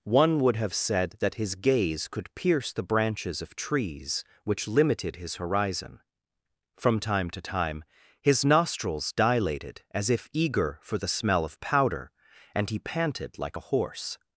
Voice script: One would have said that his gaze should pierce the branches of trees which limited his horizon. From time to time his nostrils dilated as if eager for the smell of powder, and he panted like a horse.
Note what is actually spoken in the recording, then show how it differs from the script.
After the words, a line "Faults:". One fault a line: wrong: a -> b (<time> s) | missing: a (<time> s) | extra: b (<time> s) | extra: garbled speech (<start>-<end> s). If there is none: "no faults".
One would have said that his gaze could pierce the branches of trees which limited his horizon. From time to time his nostrils dilated as if eager for the smell of powder, and he panted like a horse.
Faults:
wrong: should -> could (2.1 s)